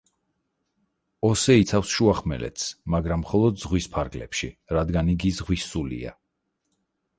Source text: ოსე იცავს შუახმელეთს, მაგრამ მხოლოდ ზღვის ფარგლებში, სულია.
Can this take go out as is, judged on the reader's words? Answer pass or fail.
fail